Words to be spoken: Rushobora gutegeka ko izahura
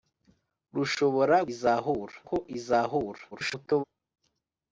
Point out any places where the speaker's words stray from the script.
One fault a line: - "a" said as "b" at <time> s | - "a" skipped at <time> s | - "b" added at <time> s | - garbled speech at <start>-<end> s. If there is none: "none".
- "gutegeka" said as "izahura" at 1.5 s
- garbled speech at 3.3-3.8 s